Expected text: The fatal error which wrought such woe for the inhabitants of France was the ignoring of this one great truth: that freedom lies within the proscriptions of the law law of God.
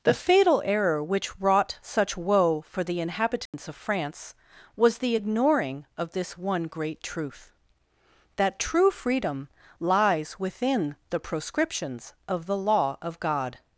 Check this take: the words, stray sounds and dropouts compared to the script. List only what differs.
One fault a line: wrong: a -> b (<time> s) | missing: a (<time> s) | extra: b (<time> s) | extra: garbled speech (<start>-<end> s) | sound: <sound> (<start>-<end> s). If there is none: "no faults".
sound: dropout (3.5-3.5 s)
extra: true (8.6 s)
missing: law (13.0 s)